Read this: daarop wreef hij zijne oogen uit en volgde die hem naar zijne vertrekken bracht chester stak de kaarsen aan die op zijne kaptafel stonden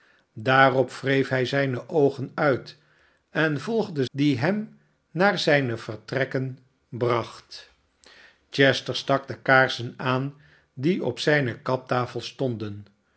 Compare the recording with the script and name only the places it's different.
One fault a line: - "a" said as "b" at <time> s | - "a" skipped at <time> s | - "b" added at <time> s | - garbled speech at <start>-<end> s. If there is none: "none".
none